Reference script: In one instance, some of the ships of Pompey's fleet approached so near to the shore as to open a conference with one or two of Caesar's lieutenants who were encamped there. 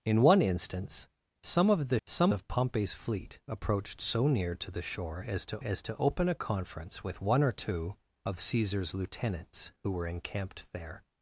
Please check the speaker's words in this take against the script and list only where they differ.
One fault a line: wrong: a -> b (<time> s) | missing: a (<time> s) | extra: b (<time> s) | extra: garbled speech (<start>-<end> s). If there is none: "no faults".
wrong: ships -> some (2.1 s)
extra: as to (5.6 s)